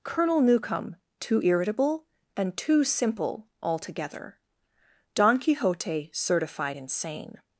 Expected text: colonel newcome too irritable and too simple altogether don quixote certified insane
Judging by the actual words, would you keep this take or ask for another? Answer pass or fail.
pass